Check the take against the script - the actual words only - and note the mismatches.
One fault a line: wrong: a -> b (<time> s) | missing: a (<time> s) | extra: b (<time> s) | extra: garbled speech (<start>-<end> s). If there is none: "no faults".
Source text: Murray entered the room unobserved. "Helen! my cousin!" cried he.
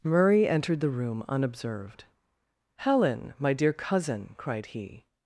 extra: dear (3.5 s)